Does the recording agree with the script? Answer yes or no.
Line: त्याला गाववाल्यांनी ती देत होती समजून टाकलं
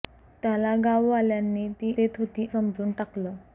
yes